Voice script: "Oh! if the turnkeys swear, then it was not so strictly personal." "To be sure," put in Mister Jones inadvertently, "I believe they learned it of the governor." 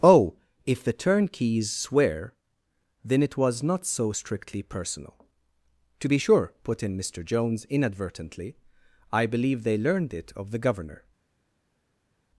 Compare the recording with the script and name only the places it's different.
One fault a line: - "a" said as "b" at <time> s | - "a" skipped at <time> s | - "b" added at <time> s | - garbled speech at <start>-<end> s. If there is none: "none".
none